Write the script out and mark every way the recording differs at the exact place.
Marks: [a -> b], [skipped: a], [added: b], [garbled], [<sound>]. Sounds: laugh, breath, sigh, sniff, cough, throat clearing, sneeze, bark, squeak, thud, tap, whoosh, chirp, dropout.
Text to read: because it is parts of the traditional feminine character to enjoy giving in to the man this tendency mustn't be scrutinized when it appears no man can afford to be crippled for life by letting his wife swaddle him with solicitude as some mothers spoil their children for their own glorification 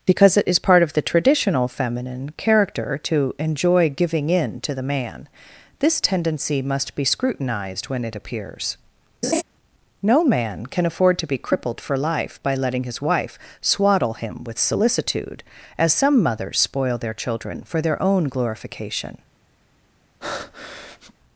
because it is [parts -> part] of the traditional feminine character to enjoy giving in to the man this tendency [mustn't -> must] be scrutinized when it appears [laugh] no man can afford to be crippled for life by letting his wife swaddle him with solicitude as some mothers spoil their children for their own glorification [breath]